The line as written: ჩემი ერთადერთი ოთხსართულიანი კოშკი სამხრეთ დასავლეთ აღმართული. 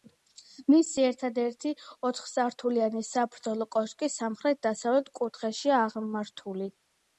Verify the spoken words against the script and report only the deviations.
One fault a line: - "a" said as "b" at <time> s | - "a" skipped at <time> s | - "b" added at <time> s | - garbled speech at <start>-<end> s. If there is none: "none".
- "ჩემი" said as "მისი" at 0.7 s
- "საბრძოლო" added at 3.1 s
- "კუთხეშია" added at 5.2 s